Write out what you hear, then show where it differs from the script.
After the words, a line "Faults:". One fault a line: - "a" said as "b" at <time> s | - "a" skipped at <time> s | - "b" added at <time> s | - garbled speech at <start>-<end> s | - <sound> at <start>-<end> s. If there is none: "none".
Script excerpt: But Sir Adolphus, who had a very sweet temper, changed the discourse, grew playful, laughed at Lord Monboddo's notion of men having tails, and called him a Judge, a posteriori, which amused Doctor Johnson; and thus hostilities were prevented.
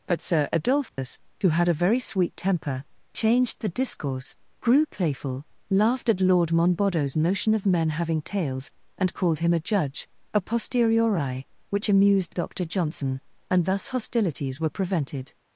But Sir Adolphus, who had a very sweet temper, changed the discourse, grew playful, laughed at Lord Monboddo's notion of men having tails, and called him a Judge, a posteriori, which amused Doctor Johnson; and thus hostilities were prevented.
Faults:
- dropout at 0.9-1.0 s